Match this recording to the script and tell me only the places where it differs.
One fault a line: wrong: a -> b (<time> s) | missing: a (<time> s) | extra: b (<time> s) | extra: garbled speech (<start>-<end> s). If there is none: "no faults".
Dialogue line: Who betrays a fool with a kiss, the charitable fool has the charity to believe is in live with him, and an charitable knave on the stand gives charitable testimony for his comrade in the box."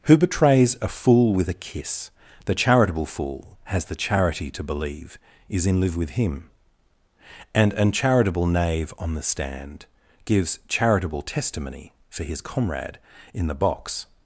no faults